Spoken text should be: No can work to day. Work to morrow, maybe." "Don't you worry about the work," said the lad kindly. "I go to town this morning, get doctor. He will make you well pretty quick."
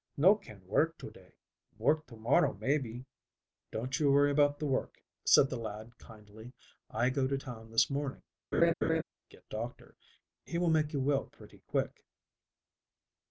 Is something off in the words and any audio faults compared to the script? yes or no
yes